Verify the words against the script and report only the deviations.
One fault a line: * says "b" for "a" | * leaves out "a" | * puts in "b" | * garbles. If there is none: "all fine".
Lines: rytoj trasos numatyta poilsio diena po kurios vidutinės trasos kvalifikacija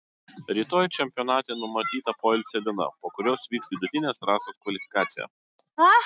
* says "čempionate" for "trasos"
* puts in "vyks"